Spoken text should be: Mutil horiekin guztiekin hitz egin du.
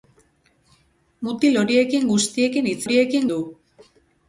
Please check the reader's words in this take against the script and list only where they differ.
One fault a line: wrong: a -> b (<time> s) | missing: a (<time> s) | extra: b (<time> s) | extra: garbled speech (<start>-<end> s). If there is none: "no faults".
wrong: egin -> horiekin (2.8 s)